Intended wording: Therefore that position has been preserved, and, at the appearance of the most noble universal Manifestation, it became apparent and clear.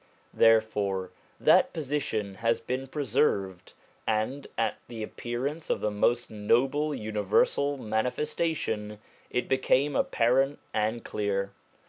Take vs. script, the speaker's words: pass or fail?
pass